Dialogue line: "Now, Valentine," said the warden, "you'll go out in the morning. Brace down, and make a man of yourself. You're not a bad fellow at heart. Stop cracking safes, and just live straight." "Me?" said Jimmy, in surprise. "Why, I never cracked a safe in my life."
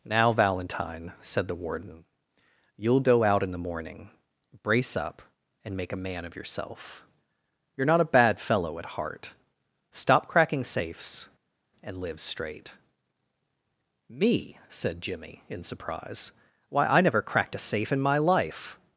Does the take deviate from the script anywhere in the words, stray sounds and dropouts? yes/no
yes